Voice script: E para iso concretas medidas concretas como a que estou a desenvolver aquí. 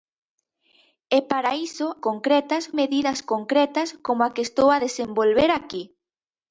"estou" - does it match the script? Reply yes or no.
yes